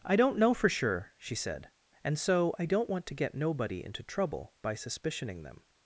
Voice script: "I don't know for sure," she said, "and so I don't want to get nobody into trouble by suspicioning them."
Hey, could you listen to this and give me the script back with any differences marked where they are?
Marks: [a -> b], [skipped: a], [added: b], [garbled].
"I don't know for sure," she said, "and so I don't want to get nobody into trouble by suspicioning them."